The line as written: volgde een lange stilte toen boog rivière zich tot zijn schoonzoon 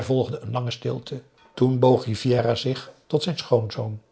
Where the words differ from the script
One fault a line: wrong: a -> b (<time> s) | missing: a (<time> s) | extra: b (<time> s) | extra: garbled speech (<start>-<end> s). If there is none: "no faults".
no faults